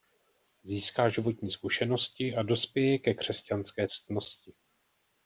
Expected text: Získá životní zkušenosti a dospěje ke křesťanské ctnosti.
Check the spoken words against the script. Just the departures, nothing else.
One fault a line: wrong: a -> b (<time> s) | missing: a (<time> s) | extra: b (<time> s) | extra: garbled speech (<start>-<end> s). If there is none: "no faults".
no faults